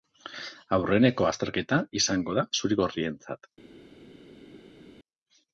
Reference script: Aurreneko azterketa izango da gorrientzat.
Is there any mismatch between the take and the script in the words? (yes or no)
yes